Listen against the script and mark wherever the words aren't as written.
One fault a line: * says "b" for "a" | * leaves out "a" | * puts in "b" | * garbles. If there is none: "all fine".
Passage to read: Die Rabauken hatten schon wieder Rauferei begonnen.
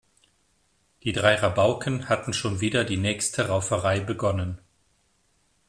* puts in "drei"
* puts in "die nächste"